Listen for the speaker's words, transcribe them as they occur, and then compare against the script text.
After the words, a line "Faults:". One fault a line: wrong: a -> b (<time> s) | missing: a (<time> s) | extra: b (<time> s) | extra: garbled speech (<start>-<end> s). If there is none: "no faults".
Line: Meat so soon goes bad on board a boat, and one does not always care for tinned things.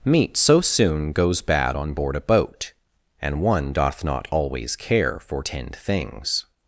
Meat so soon goes bad on board a boat, and one doth not always care for tinned things.
Faults:
wrong: does -> doth (3.7 s)